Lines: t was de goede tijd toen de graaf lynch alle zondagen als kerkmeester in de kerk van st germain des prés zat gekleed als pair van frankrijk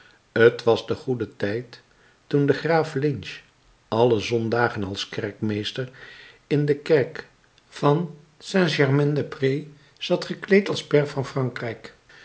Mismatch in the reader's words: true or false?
false